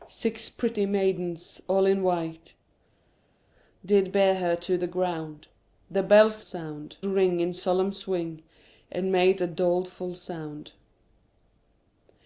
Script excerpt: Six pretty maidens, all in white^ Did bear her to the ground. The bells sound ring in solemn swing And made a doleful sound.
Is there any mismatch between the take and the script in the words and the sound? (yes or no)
no